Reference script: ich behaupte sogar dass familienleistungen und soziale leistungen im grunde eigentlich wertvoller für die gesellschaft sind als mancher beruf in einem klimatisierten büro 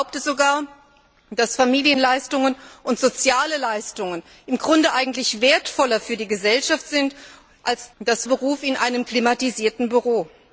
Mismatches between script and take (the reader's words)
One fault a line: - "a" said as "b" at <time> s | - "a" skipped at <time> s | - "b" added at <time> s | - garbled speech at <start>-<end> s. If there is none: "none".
- "mancher" said as "dass" at 8.0 s